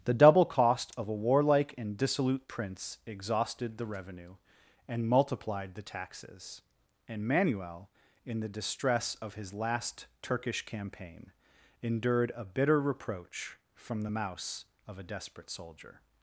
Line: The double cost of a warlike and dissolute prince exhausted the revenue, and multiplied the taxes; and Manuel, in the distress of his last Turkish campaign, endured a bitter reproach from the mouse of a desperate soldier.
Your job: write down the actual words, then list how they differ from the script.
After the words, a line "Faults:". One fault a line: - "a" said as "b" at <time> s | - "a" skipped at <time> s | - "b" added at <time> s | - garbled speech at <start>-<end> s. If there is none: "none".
The double cost of a warlike and dissolute prince exhausted the revenue, and multiplied the taxes; and Manuel, in the distress of his last Turkish campaign, endured a bitter reproach from the mouse of a desperate soldier.
Faults:
none